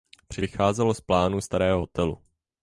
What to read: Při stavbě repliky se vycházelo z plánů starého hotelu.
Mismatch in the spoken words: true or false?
true